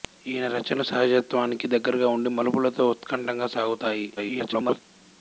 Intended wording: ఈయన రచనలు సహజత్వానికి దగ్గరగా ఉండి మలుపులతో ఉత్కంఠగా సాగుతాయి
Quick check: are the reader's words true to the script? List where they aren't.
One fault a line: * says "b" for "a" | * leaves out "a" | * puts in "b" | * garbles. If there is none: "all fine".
* garbles